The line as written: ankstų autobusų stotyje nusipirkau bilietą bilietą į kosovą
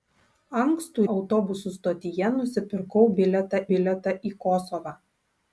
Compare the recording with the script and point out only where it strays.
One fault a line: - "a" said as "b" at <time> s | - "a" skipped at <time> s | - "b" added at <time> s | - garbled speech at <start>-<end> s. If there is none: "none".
none